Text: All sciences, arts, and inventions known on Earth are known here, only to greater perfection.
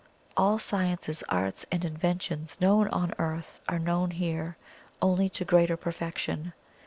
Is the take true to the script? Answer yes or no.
yes